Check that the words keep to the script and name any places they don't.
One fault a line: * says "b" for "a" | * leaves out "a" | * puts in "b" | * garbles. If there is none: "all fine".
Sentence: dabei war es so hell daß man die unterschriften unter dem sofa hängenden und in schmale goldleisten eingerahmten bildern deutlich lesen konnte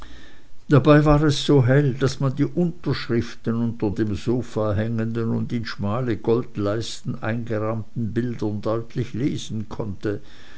all fine